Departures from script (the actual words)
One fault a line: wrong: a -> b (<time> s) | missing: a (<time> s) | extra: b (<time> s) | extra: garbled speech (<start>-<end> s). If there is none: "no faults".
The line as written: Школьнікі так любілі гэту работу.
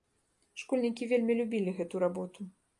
wrong: так -> вельмі (1.1 s)